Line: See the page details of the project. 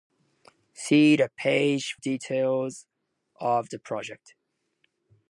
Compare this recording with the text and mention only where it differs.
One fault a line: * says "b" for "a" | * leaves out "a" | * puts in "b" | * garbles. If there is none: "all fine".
all fine